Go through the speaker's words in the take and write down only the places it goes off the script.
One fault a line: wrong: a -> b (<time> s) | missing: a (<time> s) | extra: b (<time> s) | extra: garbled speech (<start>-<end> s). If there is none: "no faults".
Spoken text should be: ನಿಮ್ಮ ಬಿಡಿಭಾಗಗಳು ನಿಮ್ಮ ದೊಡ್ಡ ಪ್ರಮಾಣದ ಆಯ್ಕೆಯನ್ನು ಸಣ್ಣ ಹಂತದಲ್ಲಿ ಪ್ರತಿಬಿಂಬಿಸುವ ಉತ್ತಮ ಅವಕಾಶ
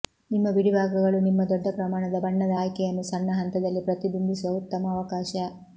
extra: ಬಣ್ಣದ (2.2 s)